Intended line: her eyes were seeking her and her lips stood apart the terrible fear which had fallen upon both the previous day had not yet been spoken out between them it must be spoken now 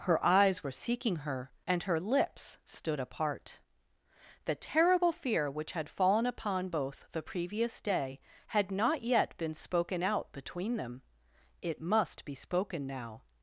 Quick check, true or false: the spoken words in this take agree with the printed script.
true